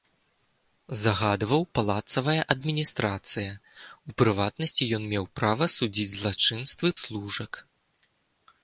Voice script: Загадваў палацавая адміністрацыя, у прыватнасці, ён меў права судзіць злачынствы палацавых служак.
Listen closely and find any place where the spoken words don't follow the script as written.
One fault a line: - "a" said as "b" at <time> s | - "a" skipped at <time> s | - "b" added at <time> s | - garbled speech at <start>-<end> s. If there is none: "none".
- "палацавых" skipped at 6.9 s